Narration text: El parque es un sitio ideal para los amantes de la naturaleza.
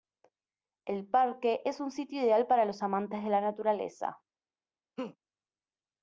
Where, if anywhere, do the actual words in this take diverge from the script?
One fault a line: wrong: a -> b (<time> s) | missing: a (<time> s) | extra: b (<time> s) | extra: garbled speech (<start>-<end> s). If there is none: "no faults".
no faults